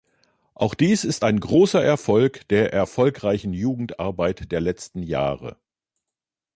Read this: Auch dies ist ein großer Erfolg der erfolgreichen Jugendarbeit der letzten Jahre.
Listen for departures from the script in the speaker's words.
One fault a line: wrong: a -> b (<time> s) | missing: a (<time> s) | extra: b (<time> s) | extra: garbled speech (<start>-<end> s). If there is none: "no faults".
no faults